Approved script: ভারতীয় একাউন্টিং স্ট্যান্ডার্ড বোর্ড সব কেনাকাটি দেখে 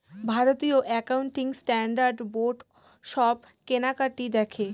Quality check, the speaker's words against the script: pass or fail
pass